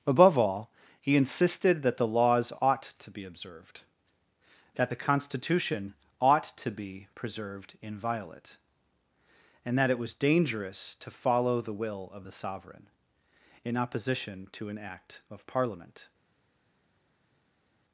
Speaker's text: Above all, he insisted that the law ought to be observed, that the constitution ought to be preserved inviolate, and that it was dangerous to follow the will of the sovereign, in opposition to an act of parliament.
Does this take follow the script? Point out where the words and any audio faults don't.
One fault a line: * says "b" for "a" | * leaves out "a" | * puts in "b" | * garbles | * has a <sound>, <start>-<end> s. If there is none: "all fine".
* says "laws" for "law"